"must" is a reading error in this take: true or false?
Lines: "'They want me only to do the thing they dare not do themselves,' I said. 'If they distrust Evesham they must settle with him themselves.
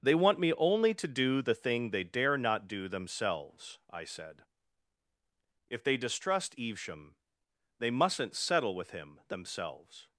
true